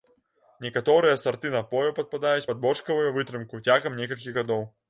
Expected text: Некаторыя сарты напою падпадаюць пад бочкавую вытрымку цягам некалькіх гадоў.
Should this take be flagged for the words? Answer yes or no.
no